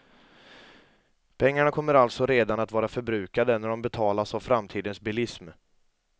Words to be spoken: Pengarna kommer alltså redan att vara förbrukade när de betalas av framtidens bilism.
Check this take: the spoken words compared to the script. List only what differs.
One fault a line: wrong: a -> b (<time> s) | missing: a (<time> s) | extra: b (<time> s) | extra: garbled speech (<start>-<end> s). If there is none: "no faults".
no faults